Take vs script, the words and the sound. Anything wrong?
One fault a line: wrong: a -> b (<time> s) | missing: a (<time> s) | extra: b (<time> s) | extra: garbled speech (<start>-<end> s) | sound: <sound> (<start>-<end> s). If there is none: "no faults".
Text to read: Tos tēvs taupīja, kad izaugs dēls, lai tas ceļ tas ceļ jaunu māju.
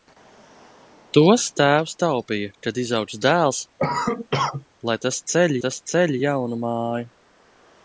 sound: cough (3.8-4.7 s)